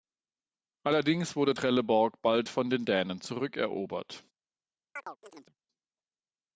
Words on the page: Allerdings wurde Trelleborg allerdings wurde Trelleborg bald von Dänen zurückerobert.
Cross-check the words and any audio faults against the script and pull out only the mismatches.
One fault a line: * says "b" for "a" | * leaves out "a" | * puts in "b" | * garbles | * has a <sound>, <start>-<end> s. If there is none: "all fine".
* leaves out "allerdings wurde Trelleborg"
* puts in "den"
* has a chirp, 5.0-5.6 s